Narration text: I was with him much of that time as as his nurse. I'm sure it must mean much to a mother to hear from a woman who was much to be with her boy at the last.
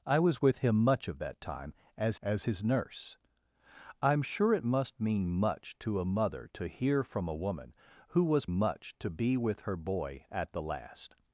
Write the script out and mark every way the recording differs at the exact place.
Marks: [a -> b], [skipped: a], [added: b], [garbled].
I was with him much of that time as as his nurse. I'm sure it must mean much to a mother to hear from a woman who was much to be with her boy at the last.